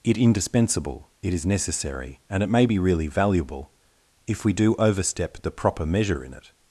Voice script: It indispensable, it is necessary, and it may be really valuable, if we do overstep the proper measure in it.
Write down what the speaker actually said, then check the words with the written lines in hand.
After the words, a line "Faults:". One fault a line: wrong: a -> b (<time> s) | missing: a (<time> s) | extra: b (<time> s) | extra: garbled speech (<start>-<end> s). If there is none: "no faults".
It indispensable, it is necessary, and it may be really valuable, if we do overstep the proper measure in it.
Faults:
no faults